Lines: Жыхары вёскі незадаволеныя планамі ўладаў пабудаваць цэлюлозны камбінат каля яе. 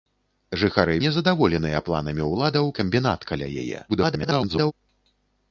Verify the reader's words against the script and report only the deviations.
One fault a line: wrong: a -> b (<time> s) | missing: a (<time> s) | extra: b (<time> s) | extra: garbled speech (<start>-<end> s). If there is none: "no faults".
missing: вёскі (0.9 s)
missing: пабудаваць цэлюлозны (2.7 s)
extra: garbled speech (3.9-4.7 s)